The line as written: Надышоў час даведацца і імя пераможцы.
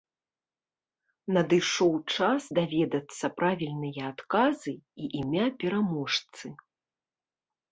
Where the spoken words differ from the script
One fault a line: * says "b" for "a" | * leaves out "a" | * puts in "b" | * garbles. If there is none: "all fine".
* puts in "правільныя адказы"